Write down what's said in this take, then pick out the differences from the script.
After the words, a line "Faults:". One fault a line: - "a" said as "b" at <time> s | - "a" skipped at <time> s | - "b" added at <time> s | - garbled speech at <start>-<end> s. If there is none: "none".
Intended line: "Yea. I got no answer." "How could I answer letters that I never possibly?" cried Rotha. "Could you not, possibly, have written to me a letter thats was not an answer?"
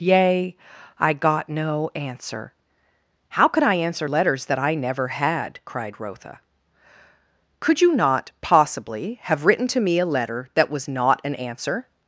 "Yea. I got no answer." "How could I answer letters that I never had?" cried Rotha. "Could you not, possibly, have written to me a letter that was not an answer?"
Faults:
- "possibly" said as "had" at 5.1 s
- "thats" said as "that" at 10.5 s